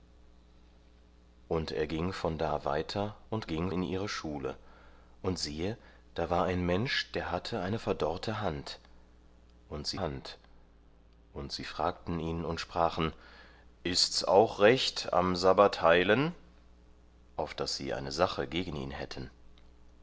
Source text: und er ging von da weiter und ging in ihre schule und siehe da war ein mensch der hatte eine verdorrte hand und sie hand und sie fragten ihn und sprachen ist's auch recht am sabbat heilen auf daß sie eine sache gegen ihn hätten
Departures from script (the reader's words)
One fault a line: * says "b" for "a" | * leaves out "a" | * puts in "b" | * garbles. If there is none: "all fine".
all fine